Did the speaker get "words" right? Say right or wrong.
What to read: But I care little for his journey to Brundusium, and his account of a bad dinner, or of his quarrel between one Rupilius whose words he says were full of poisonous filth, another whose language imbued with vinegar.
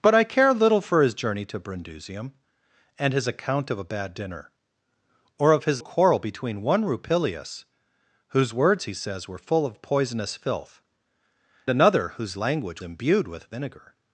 right